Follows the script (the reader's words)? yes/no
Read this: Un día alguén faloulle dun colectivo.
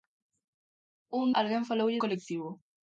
no